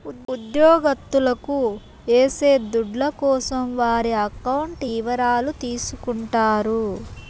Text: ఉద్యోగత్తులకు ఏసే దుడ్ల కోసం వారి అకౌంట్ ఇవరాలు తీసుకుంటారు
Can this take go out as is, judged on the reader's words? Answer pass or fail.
pass